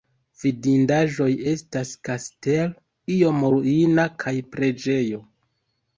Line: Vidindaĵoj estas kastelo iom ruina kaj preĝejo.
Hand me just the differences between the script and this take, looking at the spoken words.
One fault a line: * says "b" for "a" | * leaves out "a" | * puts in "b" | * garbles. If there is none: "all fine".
all fine